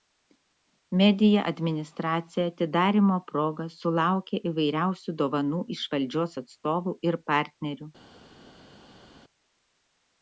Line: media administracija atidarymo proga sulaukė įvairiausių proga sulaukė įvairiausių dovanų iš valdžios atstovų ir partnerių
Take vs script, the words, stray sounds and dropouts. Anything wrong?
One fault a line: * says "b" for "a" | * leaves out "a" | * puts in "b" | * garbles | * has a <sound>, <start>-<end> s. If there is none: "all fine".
* leaves out "proga sulaukė įvairiausių"